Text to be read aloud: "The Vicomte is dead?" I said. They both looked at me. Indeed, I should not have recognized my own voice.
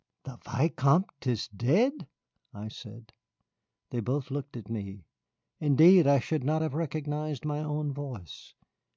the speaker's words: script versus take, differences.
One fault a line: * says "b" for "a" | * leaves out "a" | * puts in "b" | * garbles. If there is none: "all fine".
all fine